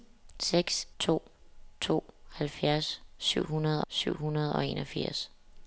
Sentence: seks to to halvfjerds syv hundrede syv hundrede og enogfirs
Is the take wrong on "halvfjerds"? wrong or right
right